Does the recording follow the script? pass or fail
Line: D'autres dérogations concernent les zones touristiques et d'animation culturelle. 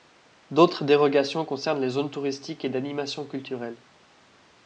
pass